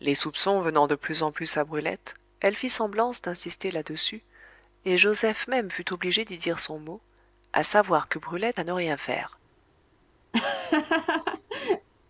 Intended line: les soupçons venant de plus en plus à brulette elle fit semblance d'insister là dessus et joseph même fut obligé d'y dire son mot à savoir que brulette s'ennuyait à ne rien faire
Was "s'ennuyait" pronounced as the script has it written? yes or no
no